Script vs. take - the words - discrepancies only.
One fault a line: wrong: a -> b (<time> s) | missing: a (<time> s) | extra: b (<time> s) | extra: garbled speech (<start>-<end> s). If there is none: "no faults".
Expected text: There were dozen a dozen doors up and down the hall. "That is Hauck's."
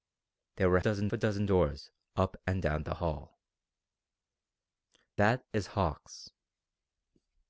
no faults